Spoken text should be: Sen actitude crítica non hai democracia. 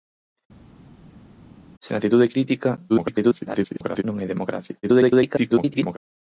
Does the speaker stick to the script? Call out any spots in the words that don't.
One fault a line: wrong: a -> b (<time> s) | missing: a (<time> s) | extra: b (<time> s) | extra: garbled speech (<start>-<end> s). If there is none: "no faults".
extra: garbled speech (2.9-4.0 s)
extra: garbled speech (4.8-6.0 s)